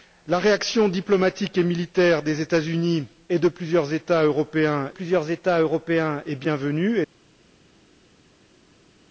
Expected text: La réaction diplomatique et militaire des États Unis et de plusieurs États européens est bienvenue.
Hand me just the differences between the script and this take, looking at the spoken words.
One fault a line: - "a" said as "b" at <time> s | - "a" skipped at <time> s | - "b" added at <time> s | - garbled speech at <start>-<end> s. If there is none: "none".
- "plusieurs États européens" added at 4.9 s